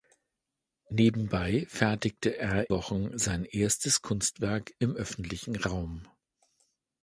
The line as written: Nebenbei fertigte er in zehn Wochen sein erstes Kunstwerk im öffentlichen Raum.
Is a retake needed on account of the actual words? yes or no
yes